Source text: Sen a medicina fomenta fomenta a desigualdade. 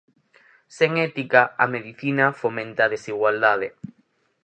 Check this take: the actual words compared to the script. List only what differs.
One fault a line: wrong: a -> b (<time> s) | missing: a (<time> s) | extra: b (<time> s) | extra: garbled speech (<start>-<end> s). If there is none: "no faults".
extra: ética (1.1 s)
missing: fomenta (2.8 s)